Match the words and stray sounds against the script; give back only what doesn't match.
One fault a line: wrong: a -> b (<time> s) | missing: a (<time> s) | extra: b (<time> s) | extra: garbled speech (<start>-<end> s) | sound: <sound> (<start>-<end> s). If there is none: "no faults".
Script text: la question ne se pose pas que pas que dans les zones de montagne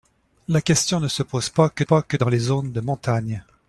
no faults